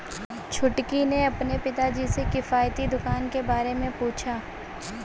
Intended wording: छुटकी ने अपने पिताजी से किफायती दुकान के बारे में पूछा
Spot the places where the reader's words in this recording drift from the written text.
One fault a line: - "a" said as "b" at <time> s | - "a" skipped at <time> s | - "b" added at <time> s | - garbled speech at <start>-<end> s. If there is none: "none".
none